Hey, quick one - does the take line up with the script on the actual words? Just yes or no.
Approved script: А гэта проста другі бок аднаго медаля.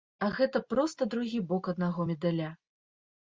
yes